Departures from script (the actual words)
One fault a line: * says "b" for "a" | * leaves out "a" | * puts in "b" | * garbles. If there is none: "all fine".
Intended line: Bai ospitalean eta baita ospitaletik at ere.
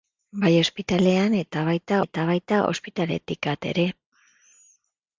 * puts in "eta baita"